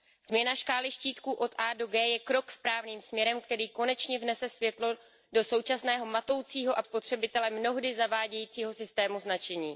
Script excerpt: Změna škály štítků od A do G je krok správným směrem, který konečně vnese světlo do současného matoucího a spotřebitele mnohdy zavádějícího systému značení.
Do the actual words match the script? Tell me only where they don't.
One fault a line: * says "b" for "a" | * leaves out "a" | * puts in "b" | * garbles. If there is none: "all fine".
all fine